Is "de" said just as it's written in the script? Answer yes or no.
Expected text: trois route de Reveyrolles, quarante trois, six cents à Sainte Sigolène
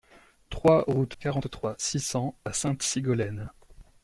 no